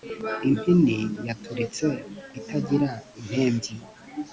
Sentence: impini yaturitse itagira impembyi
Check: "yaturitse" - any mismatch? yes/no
no